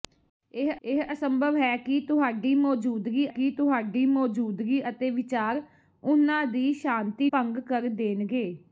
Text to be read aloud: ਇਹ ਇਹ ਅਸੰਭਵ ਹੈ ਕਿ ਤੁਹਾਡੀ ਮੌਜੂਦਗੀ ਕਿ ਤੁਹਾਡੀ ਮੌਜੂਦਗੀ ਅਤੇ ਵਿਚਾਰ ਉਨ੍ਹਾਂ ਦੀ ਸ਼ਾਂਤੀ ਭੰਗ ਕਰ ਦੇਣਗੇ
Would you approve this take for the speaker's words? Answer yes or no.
yes